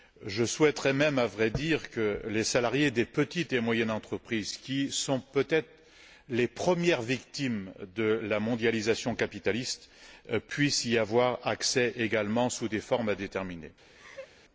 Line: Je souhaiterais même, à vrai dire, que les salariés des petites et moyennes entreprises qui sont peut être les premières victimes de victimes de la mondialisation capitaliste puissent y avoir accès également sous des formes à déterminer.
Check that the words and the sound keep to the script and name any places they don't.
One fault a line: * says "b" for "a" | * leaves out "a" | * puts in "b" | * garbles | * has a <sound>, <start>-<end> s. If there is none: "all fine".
* leaves out "victimes de"
* has a laugh, 13.9-14.3 s